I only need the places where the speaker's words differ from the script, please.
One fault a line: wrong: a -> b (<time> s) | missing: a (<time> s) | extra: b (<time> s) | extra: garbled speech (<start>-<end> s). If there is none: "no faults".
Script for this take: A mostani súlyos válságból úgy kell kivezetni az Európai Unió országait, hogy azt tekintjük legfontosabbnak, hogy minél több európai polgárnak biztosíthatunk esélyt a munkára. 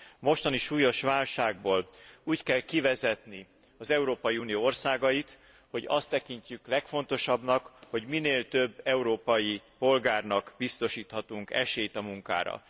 no faults